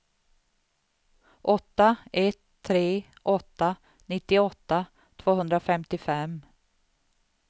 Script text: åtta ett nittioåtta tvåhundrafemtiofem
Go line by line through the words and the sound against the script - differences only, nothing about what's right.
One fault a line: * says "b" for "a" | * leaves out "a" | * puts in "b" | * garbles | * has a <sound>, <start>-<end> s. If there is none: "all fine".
* puts in "tre åtta"